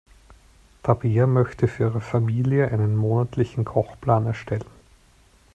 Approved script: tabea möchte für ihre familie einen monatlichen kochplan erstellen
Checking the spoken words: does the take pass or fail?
pass